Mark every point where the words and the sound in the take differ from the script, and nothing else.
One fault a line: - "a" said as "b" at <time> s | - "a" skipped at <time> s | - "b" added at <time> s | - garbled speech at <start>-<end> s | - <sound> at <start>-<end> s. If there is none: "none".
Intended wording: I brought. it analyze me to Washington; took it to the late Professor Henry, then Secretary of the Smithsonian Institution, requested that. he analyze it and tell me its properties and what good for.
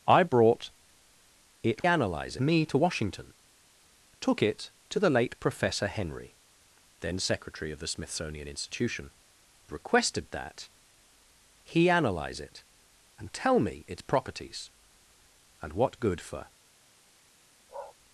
- bark at 17.7-18.0 s